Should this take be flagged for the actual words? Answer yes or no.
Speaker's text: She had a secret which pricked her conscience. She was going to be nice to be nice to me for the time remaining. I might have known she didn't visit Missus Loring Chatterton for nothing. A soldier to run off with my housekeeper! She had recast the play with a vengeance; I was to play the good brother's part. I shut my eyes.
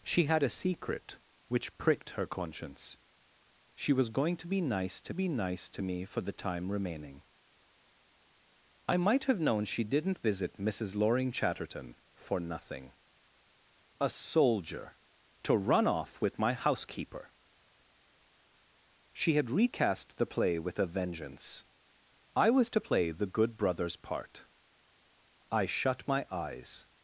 no